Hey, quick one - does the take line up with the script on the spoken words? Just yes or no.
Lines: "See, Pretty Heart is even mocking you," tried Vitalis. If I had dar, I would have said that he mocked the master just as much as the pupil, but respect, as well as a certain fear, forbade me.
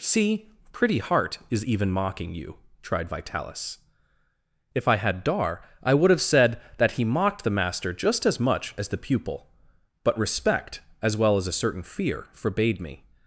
yes